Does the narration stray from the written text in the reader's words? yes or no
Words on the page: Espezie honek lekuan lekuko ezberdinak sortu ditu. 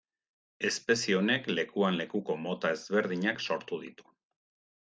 yes